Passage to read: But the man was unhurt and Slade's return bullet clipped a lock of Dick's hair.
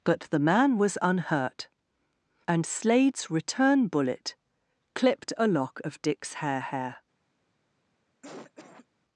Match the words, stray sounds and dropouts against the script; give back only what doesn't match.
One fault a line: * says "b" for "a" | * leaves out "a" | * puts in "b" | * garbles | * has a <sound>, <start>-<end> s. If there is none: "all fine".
* puts in "hair"
* has a cough, 8.2-8.9 s